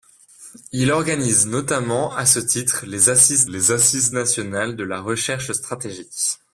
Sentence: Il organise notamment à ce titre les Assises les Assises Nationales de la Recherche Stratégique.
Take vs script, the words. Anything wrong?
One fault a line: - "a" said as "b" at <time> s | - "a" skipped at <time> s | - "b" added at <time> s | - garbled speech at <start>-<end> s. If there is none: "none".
none